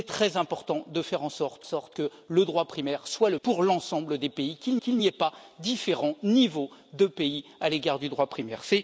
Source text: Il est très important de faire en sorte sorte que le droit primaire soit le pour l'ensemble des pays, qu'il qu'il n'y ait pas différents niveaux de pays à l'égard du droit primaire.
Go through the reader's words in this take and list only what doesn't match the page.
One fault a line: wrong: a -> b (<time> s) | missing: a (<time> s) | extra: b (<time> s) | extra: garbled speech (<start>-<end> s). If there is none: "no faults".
no faults